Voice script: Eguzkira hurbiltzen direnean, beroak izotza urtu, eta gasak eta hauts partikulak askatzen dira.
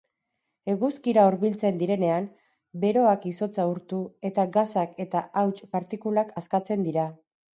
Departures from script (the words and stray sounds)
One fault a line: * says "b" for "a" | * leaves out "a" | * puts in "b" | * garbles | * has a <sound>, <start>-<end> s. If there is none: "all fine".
all fine